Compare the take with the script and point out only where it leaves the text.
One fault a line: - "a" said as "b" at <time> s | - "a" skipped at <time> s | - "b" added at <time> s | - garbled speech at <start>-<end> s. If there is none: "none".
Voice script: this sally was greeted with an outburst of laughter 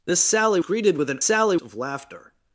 - "was" skipped at 0.6 s
- "outburst" said as "sally" at 1.2 s